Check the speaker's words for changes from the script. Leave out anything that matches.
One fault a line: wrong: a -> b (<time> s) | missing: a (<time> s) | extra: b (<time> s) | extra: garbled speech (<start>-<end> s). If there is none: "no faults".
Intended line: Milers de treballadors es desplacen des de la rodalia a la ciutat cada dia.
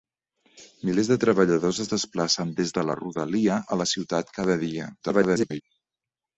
extra: garbled speech (5.0-5.6 s)